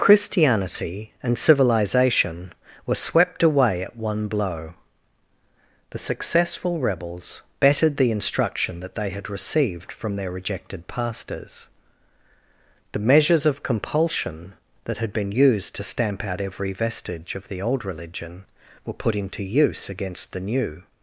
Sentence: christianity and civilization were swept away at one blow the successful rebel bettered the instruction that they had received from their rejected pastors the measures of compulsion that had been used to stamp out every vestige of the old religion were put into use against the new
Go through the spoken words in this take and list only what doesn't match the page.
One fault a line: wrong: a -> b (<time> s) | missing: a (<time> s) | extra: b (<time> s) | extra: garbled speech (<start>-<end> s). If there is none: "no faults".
wrong: rebel -> rebels (6.8 s)